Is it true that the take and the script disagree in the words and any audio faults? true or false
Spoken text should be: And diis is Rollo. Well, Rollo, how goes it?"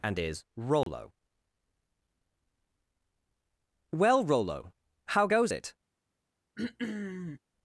true